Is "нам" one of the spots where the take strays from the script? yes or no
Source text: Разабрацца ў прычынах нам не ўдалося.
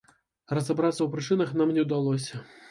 no